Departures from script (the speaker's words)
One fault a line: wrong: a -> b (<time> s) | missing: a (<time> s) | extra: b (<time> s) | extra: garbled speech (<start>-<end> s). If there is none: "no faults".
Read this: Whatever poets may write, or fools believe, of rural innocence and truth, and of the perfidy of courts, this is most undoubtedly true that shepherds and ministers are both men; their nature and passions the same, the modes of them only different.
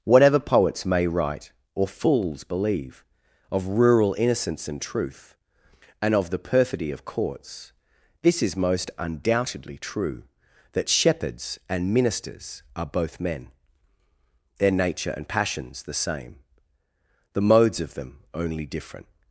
no faults